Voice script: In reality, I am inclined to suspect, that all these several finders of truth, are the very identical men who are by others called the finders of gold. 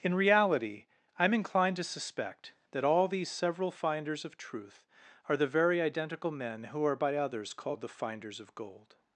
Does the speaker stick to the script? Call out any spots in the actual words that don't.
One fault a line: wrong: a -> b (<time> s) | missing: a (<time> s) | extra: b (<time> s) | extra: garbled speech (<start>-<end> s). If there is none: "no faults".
no faults